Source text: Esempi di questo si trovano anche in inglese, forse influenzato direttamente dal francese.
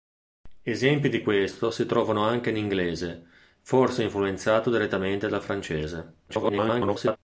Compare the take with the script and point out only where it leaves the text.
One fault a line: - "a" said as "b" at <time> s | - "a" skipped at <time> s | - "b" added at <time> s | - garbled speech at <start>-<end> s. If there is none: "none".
- garbled speech at 6.3-7.2 s